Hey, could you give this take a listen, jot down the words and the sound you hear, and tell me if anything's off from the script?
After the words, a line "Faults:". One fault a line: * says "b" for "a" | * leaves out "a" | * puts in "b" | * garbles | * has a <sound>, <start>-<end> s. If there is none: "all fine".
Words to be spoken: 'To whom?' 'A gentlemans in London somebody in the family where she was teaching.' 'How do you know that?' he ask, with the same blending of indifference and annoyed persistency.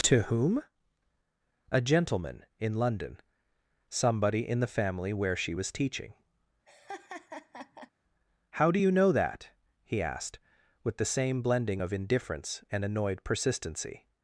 'To whom?' 'A gentleman in London somebody in the family where she was teaching.' 'How do you know that?' he asked, with the same blending of indifference and annoyed persistency.
Faults:
* says "gentleman" for "gentlemans"
* has a laugh, 6.7-7.9 s
* says "asked" for "ask"